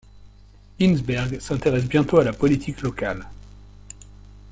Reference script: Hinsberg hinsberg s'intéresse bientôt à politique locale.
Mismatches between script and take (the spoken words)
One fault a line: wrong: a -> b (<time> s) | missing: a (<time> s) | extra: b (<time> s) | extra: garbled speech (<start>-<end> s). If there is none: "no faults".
missing: hinsberg (1.4 s)
extra: la (2.2 s)